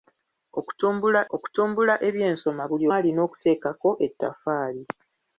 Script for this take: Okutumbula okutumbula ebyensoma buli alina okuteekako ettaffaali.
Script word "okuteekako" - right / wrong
right